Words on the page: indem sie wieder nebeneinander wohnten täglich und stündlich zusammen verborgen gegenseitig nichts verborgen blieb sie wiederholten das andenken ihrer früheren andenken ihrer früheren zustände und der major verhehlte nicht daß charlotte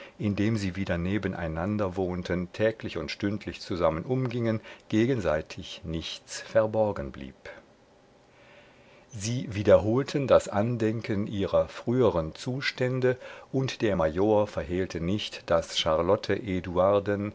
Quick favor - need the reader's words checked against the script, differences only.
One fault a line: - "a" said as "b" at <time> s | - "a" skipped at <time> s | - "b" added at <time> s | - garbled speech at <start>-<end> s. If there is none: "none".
- "verborgen" said as "umgingen" at 4.0 s
- "andenken ihrer früheren" skipped at 12.3 s